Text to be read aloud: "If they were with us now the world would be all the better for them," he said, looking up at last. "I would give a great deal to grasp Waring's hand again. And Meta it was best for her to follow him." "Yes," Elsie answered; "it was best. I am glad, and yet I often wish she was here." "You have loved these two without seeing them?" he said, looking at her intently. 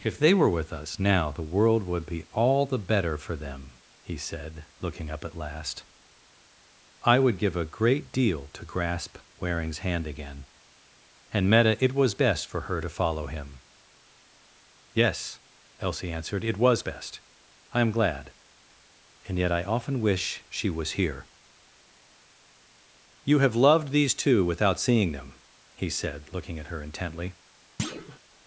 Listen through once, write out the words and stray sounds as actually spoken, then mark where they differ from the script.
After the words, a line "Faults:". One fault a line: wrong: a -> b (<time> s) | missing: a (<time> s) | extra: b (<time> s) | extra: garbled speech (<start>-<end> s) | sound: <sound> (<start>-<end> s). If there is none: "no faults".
"If they were with us now the world would be all the better for them," he said, looking up at last. "I would give a great deal to grasp Waring's hand again. And Meta it was best for her to follow him." "Yes," Elsie answered; "it was best. I am glad, and yet I often wish she was here." "You have loved these two without seeing them?" he said, looking at her intently.
Faults:
sound: thud (27.8-28.2 s)